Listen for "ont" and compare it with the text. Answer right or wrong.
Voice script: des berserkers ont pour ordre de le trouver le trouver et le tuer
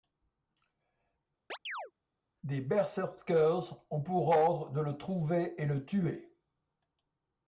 right